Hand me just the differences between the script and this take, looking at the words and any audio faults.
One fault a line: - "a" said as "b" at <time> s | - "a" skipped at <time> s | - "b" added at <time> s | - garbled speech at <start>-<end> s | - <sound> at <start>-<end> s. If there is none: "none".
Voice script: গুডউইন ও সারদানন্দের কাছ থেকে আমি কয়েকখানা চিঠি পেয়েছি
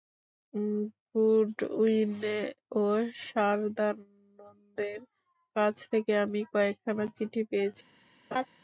- laugh at 8.3-8.5 s